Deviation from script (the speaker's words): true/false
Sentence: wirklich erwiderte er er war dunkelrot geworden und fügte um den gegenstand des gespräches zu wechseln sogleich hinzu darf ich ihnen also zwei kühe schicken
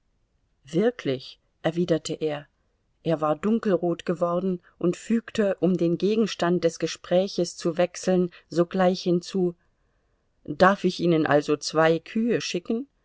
false